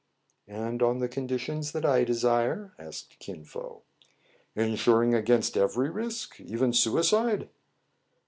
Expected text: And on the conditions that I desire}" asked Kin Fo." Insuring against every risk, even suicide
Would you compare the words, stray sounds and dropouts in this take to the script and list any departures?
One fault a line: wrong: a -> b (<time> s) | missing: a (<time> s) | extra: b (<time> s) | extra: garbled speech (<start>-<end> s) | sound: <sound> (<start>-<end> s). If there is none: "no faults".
no faults